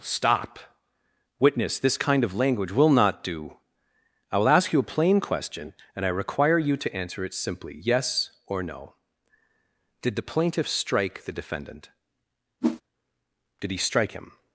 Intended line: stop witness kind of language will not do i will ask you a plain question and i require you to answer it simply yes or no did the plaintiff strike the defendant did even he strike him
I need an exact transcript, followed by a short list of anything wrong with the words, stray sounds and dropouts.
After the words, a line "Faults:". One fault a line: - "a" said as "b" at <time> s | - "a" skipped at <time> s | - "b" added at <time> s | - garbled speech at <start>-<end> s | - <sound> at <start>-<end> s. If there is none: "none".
stop witness this kind of language will not do i will ask you a plain question and i require you to answer it simply yes or no did the plaintiff strike the defendant did he strike him
Faults:
- "this" added at 1.8 s
- whoosh at 12.6-12.8 s
- "even" skipped at 13.7 s